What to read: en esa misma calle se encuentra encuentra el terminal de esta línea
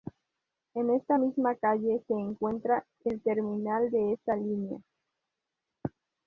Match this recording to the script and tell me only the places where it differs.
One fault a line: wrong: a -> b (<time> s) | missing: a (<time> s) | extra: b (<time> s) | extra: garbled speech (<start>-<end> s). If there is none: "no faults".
wrong: esa -> esta (0.9 s)
missing: encuentra (2.9 s)